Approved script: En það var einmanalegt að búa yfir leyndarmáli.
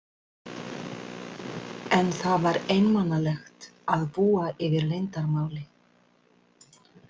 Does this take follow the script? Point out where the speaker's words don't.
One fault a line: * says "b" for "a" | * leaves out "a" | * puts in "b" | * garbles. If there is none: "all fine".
all fine